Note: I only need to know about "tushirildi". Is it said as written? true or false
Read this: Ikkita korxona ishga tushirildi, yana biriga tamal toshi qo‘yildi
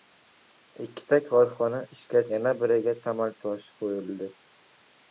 false